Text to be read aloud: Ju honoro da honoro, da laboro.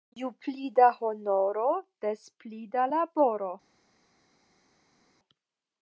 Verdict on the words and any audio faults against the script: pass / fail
fail